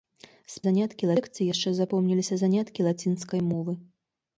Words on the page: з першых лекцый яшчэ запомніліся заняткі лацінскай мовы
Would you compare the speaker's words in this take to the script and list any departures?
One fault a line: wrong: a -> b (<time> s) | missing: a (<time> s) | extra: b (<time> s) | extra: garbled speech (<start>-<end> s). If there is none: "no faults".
wrong: першых -> заняткі (0.6 s)